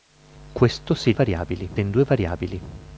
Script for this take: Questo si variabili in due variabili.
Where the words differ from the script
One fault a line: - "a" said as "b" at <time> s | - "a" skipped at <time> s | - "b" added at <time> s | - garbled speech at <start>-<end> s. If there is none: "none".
none